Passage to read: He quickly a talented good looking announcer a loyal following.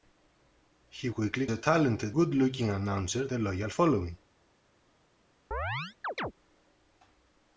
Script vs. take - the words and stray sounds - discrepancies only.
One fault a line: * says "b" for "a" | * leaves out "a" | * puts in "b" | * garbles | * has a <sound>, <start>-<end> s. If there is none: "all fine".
* has a chirp, 5.5-6.3 s